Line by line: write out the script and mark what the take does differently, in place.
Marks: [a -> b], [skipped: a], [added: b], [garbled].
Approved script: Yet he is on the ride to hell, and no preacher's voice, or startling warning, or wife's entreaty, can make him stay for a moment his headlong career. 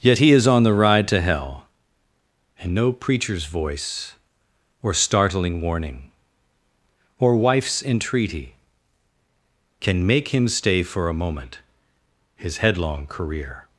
Yet he is on the ride to hell, and no preacher's voice, or startling warning, or wife's entreaty, can make him stay for a moment his headlong career.